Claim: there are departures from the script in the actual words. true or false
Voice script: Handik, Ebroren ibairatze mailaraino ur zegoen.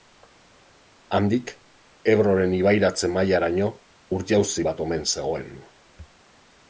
true